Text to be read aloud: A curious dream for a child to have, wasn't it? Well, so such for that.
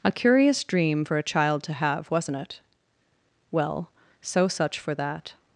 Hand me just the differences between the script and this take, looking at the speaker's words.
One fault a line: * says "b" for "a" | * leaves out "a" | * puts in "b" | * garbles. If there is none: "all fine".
all fine